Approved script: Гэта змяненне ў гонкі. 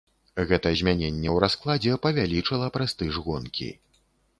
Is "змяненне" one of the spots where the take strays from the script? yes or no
no